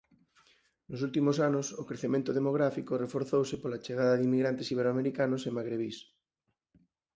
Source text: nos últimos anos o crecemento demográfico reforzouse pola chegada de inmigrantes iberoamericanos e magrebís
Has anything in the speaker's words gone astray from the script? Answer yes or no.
no